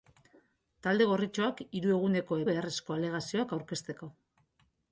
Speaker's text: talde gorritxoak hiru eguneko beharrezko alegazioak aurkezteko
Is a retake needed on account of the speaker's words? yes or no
no